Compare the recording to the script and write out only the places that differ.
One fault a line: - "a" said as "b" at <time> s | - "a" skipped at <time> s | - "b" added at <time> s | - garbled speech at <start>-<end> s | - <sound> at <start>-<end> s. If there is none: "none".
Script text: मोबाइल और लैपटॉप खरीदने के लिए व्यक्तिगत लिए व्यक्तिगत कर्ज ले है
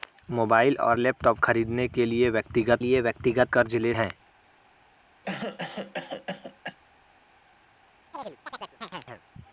- cough at 5.2-6.8 s
- chirp at 8.1-9.2 s